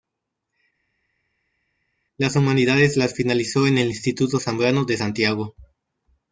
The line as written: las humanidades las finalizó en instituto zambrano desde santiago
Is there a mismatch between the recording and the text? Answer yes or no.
yes